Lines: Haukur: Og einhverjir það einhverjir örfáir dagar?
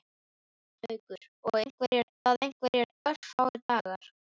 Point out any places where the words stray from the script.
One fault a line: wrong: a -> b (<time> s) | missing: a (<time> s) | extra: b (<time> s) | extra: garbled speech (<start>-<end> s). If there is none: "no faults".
no faults